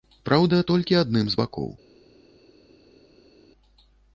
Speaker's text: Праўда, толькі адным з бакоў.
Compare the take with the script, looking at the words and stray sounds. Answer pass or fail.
pass